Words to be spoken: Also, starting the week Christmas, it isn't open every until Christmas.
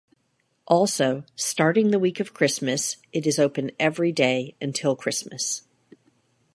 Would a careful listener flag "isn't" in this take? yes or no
yes